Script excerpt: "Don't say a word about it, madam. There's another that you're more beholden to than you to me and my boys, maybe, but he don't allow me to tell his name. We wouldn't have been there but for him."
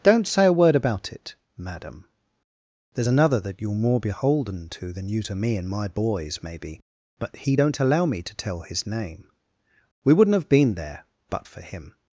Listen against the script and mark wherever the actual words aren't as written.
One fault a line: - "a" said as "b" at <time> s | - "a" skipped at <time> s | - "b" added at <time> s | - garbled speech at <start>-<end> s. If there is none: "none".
none